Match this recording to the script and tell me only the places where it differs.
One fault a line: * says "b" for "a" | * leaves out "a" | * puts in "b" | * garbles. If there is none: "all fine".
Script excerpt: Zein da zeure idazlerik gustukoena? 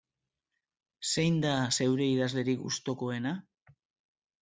all fine